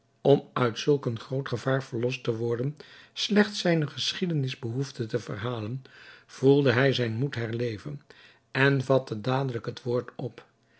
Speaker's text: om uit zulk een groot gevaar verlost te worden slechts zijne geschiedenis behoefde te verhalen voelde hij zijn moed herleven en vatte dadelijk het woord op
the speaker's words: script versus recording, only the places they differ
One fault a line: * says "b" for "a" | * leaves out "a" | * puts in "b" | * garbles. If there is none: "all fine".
all fine